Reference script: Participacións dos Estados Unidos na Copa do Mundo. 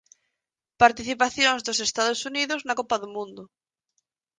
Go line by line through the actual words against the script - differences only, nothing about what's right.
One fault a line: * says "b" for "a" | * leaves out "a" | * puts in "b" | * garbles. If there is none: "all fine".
all fine